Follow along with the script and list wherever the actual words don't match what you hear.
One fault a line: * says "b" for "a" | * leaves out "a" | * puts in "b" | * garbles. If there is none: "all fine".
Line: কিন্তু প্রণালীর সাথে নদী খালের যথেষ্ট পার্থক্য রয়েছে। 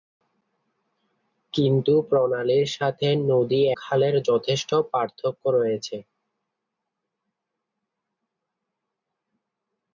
all fine